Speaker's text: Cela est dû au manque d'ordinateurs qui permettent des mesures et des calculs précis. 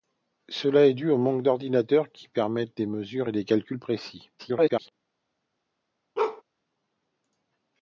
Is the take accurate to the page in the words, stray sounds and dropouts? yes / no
no